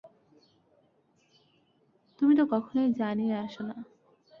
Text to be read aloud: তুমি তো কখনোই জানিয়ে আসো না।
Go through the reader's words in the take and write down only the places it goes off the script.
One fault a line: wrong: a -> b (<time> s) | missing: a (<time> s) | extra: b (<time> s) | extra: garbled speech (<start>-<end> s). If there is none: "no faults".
no faults